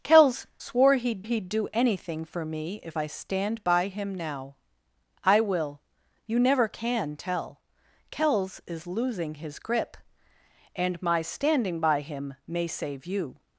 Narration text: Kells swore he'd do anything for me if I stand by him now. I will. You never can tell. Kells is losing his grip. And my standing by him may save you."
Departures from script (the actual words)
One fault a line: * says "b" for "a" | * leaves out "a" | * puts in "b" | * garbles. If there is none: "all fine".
* puts in "he'd"